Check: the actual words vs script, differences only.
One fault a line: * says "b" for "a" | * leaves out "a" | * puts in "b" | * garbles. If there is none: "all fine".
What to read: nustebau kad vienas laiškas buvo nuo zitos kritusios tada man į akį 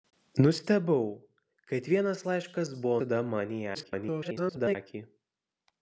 * leaves out "nuo zitos kritusios"
* garbles